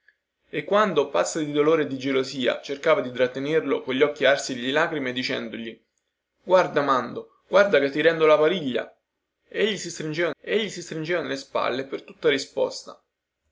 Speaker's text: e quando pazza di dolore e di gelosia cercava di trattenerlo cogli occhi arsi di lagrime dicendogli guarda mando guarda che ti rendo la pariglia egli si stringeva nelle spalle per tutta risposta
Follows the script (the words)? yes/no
no